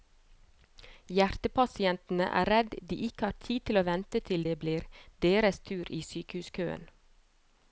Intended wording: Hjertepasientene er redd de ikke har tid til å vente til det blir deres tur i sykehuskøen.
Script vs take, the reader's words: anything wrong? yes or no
no